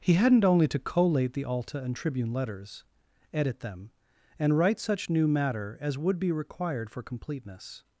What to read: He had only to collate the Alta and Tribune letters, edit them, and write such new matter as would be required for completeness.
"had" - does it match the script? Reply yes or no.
no